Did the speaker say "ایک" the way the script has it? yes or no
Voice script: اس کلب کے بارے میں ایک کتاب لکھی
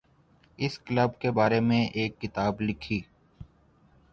yes